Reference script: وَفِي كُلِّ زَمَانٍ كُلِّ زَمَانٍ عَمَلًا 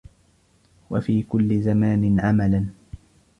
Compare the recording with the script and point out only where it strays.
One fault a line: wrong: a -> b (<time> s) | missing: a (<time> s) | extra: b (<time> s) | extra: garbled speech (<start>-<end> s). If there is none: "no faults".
missing: كُلِّ زَمَانٍ (2.2 s)